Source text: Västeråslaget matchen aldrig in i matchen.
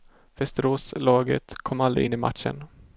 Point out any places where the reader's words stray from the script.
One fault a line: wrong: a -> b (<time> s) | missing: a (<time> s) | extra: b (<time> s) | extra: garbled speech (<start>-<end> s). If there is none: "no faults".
wrong: matchen -> kom (1.6 s)